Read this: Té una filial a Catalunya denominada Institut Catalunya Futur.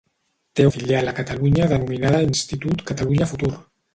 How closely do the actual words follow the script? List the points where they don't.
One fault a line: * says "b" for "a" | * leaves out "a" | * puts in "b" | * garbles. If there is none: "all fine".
* leaves out "una"